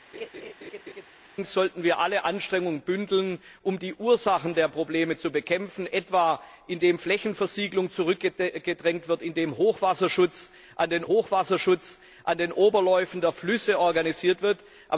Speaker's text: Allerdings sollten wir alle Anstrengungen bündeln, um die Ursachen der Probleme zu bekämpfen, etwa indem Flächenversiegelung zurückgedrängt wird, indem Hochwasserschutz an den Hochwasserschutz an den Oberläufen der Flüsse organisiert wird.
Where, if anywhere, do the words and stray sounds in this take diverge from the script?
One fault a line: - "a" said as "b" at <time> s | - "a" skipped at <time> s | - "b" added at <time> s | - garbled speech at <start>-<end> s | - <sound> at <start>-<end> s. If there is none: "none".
- laugh at 0.1-1.1 s